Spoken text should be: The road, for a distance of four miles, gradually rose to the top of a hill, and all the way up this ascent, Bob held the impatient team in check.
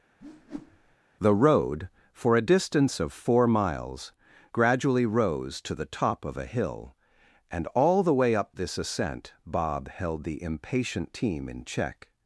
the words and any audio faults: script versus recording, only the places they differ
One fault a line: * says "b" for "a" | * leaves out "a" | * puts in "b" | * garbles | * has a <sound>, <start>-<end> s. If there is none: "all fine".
* has a whoosh, 0.2-1.0 s